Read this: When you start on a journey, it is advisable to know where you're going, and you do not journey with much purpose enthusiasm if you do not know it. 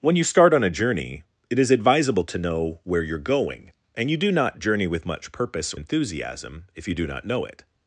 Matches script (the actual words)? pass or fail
pass